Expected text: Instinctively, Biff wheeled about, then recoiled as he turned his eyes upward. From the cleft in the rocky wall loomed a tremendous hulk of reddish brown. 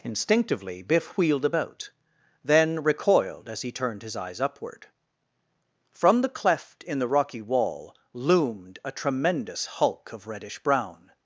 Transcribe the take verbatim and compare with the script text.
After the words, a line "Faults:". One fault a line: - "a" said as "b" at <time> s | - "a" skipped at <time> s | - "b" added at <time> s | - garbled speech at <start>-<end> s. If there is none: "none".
Instinctively, Biff wheeled about, then recoiled as he turned his eyes upward. From the cleft in the rocky wall loomed a tremendous hulk of reddish brown.
Faults:
none